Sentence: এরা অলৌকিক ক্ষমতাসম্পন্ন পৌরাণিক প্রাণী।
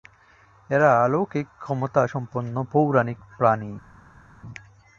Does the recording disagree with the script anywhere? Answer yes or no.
no